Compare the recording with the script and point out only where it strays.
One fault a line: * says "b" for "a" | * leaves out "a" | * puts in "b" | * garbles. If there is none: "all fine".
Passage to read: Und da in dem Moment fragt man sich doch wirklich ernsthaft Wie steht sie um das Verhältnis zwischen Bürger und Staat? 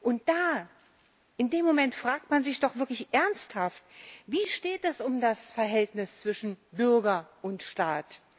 * says "es" for "sie"